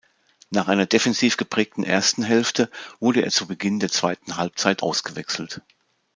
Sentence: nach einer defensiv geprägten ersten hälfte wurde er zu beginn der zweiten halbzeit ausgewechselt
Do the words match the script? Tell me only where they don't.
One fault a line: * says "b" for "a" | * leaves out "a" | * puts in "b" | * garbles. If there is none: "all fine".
all fine